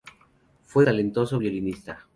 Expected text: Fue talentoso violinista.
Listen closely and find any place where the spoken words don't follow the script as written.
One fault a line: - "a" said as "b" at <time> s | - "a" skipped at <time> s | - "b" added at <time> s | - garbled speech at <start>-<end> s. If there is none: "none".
none